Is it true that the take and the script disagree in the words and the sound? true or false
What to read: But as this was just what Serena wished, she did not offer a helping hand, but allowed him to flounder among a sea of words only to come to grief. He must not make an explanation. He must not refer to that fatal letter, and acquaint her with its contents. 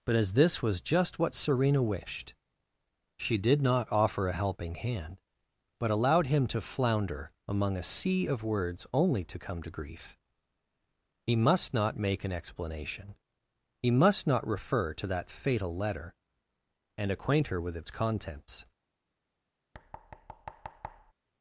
true